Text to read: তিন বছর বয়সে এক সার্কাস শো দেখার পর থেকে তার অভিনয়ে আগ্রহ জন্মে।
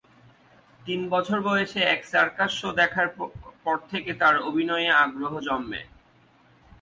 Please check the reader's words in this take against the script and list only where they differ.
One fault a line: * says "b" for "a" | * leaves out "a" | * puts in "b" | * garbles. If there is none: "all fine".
all fine